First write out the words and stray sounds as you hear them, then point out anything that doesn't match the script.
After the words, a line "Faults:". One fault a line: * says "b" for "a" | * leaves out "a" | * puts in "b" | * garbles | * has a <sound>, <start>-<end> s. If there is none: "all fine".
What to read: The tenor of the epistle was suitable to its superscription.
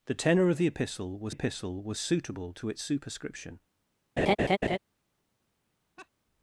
The tenor of the epistle was epistle was suitable to its superscription.
Faults:
* puts in "epistle was"
* has a laugh, 4.2-4.8 s
* has a laugh, 6.0-6.1 s